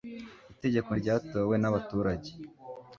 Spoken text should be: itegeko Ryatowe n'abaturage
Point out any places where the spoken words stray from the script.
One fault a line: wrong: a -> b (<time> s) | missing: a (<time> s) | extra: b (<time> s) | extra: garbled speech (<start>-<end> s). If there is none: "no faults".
no faults